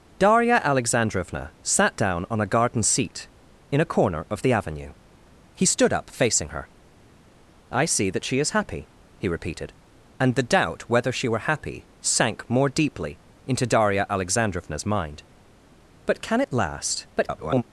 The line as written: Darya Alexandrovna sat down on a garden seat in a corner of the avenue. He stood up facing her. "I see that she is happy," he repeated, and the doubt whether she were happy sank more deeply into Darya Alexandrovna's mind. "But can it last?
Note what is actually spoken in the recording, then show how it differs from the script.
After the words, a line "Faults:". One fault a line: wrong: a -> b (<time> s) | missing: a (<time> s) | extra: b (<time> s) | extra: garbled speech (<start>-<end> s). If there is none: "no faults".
Darya Alexandrovna sat down on a garden seat in a corner of the avenue. He stood up facing her. "I see that she is happy," he repeated, and the doubt whether she were happy sank more deeply into Darya Alexandrovna's mind. "But can it last? [garbled]
Faults:
extra: garbled speech (17.2-17.6 s)